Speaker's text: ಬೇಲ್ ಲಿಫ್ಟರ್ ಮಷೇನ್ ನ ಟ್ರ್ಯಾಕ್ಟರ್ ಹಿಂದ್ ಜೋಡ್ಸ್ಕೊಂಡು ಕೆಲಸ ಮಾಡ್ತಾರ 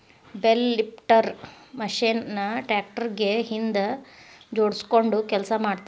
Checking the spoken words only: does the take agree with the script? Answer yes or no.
no